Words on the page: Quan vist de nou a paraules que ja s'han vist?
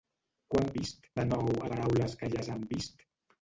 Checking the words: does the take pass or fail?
pass